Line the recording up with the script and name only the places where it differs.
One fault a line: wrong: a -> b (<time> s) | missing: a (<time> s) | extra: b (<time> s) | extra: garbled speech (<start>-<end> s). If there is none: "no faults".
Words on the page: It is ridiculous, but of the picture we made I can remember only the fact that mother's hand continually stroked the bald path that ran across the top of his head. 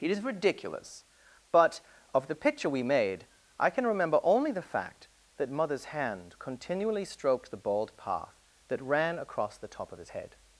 no faults